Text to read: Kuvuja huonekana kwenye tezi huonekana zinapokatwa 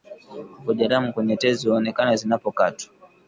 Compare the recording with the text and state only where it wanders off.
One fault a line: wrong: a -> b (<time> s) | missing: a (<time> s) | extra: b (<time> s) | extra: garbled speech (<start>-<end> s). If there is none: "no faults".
wrong: huonekana -> damu (0.9 s)